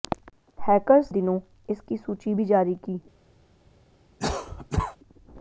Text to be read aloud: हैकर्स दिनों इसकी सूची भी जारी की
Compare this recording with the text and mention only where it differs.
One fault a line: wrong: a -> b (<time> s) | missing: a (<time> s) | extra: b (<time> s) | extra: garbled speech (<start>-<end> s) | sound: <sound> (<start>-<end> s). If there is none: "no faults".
sound: cough (4.2-5.0 s)